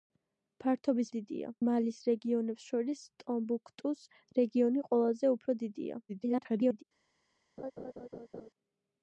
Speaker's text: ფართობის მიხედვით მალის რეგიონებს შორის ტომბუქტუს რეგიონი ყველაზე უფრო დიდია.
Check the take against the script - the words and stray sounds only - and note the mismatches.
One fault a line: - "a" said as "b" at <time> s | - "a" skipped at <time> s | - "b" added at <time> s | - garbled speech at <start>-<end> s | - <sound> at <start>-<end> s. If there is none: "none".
- "მიხედვით" said as "დიდია" at 1.1 s
- garbled speech at 6.1-6.8 s
- laugh at 7.6-8.5 s